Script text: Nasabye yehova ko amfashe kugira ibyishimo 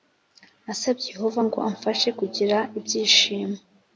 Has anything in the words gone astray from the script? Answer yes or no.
yes